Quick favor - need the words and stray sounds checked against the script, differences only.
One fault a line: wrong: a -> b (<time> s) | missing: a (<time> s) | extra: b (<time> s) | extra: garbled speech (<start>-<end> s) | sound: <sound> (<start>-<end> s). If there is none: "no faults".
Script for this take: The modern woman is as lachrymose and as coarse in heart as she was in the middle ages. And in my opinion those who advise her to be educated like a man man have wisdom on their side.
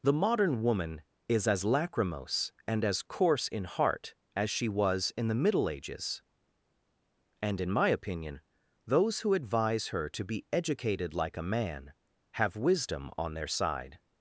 missing: man (11.9 s)